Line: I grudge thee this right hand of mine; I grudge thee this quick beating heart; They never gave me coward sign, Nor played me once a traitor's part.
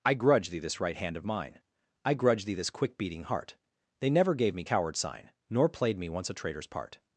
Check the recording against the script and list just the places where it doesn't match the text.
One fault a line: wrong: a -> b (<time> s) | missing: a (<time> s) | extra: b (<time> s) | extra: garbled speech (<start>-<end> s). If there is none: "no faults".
no faults